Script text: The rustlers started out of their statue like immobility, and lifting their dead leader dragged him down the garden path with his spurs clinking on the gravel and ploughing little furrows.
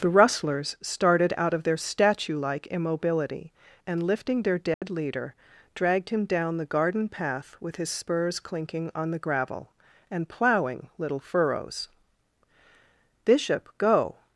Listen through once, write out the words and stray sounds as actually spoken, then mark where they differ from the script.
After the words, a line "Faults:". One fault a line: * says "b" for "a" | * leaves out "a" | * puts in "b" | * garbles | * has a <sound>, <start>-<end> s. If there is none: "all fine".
The rustlers started out of their statue like immobility, and lifting their dead leader dragged him down the garden path with his spurs clinking on the gravel and ploughing little furrows. "Bishop, go
Faults:
* has a dropout, 4.7-4.8 s
* puts in "Bishop go"